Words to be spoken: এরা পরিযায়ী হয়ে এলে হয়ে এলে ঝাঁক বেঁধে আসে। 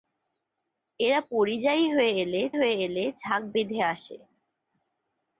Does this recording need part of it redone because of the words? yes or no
no